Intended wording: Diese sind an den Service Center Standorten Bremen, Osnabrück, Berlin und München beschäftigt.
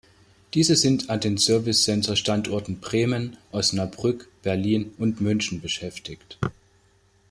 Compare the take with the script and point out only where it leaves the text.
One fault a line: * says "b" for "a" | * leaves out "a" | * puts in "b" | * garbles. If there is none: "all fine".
all fine